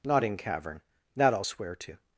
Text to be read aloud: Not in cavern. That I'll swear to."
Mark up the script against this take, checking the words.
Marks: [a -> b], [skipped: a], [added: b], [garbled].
Not in cavern. That I'll swear to."